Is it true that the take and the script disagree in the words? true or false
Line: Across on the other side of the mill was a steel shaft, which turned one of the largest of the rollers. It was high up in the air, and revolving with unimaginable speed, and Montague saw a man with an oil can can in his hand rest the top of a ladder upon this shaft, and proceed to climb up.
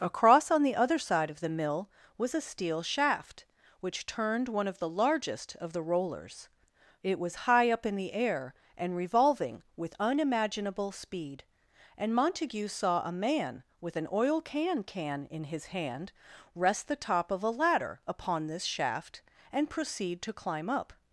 false